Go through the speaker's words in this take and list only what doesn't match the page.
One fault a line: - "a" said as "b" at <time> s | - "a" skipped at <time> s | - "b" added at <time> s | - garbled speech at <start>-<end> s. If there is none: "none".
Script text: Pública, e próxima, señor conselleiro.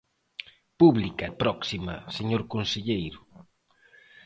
none